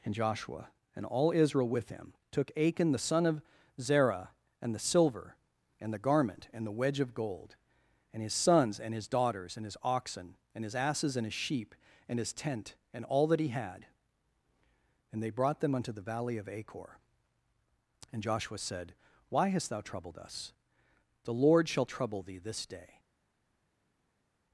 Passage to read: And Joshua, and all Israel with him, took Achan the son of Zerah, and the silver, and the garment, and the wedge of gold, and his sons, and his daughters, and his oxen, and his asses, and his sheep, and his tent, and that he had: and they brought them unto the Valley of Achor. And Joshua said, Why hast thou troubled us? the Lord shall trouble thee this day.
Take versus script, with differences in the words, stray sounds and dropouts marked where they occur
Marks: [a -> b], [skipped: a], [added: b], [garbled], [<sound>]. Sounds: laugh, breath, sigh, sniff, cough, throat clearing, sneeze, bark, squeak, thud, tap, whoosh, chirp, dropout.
And Joshua, and all Israel with him, took Achan the son of Zerah, and the silver, and the garment, and the wedge of gold, and his sons, and his daughters, and his oxen, and his asses, and his sheep, and his tent, and [added: all] that he had: and they brought them unto the Valley of Achor. And Joshua said, Why hast thou troubled us? the Lord shall trouble thee this day.